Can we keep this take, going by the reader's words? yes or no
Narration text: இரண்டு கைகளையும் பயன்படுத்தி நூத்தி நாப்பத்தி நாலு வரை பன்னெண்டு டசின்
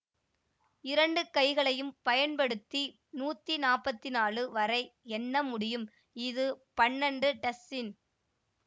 no